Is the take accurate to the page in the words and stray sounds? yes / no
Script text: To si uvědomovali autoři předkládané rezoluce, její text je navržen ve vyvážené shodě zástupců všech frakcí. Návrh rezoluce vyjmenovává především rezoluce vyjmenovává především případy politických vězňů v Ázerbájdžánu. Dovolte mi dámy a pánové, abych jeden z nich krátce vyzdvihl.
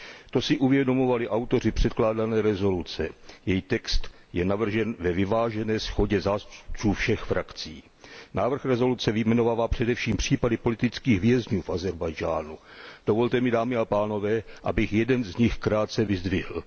no